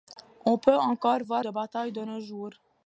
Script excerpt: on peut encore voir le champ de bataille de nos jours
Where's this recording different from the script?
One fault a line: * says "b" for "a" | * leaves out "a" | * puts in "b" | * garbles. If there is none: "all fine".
* leaves out "le champ"